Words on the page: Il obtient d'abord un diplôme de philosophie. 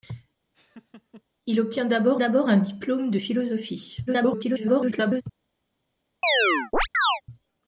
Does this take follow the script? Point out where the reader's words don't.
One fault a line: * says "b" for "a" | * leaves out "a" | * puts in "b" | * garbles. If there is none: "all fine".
* puts in "d'abord"
* garbles